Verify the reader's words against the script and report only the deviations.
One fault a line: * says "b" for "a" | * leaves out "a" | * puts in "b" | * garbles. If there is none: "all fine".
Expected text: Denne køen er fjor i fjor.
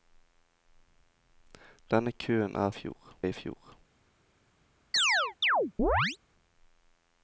all fine